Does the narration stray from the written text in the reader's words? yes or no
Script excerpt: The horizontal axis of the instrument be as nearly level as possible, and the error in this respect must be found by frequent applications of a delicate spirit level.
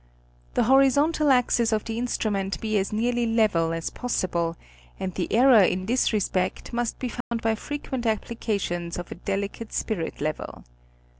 no